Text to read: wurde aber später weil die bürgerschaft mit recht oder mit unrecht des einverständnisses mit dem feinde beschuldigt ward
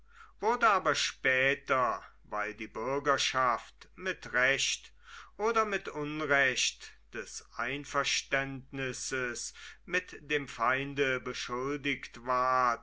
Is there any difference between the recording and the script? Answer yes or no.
no